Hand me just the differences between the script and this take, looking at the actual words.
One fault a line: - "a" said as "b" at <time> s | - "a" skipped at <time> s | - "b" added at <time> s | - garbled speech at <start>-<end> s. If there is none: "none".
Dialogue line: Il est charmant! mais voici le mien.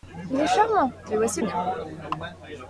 - "le" skipped at 1.4 s